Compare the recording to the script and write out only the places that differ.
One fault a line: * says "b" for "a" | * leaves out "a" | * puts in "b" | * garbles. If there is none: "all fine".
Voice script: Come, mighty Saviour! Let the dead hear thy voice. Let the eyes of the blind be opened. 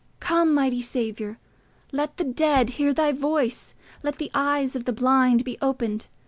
all fine